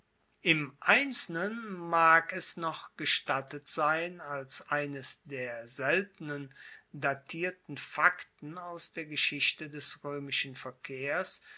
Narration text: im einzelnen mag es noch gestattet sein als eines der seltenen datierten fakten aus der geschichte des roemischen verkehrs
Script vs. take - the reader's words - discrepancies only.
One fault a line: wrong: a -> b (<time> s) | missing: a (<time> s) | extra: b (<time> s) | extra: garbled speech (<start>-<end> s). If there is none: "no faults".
no faults